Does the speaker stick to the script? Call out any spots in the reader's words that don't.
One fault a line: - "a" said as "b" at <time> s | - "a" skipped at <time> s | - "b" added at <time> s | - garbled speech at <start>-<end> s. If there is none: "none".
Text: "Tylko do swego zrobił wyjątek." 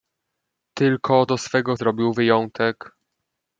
none